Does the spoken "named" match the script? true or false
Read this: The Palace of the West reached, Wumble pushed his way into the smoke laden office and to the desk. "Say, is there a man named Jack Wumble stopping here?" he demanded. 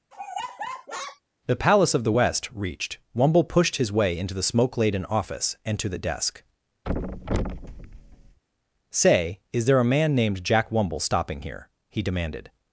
true